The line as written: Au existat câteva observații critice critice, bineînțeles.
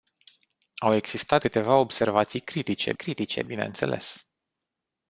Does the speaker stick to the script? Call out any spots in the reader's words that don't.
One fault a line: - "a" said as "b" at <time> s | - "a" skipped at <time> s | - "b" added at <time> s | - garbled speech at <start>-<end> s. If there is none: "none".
none